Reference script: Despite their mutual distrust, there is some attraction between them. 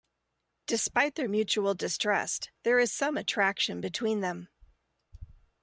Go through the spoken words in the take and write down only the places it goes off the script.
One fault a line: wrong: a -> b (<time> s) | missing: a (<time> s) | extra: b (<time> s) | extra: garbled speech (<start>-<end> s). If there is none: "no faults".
no faults